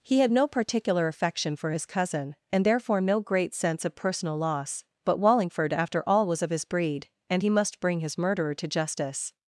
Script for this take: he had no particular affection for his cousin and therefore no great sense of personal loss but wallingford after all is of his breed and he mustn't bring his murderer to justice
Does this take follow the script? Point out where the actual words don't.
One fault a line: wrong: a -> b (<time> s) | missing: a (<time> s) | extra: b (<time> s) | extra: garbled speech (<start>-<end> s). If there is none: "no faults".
wrong: is -> was (6.3 s)
wrong: mustn't -> must (7.5 s)